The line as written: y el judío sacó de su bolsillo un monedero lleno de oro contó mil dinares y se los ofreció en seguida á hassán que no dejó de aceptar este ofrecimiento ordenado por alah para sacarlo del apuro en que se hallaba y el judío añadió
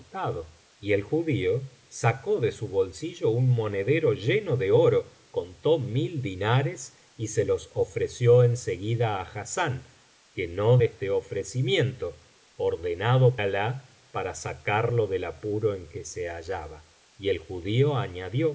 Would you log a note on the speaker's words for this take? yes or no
yes